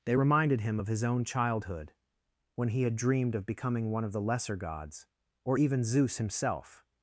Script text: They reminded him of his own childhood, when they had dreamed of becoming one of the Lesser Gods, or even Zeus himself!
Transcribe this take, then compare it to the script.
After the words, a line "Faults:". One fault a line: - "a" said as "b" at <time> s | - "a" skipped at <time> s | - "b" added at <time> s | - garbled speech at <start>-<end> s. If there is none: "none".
They reminded him of his own childhood, when he had dreamed of becoming one of the Lesser Gods, or even Zeus himself!
Faults:
- "they" said as "he" at 2.7 s